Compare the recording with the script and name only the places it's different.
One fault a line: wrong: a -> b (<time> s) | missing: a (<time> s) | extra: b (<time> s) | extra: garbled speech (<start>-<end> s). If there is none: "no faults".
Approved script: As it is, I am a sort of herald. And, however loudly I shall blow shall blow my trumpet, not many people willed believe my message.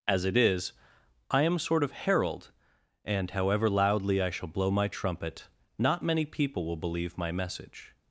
missing: shall blow (4.7 s)
wrong: willed -> will (6.7 s)